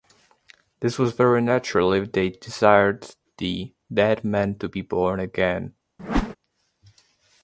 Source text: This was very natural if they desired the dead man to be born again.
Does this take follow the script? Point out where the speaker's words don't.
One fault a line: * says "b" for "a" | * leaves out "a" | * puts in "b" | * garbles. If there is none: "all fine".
all fine